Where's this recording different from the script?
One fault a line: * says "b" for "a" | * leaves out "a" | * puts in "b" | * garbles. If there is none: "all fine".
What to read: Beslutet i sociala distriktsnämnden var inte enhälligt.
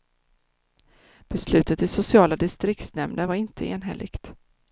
all fine